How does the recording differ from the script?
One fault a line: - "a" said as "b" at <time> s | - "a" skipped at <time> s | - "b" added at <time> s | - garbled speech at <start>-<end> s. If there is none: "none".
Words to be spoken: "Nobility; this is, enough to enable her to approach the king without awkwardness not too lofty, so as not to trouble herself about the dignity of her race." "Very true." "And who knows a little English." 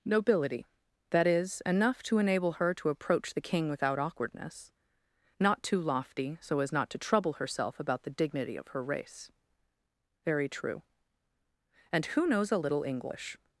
- "this" said as "that" at 1.1 s